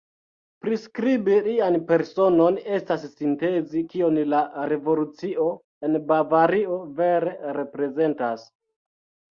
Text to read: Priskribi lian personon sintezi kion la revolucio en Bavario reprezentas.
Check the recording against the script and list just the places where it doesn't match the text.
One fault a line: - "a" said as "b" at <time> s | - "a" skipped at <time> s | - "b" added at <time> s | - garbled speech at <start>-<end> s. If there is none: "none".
- "estas" added at 2.8 s
- "vere" added at 7.0 s